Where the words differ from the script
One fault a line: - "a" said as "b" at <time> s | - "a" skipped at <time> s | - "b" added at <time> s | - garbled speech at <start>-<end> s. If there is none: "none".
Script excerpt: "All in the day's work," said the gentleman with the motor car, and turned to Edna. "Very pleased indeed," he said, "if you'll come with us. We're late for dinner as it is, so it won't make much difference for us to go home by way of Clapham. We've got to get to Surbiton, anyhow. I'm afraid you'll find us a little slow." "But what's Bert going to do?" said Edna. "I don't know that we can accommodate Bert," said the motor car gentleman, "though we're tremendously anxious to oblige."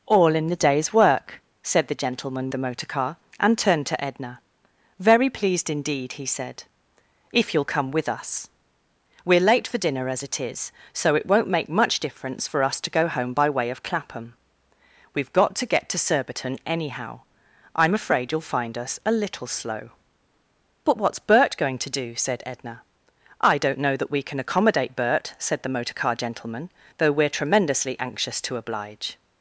- "with" skipped at 2.5 s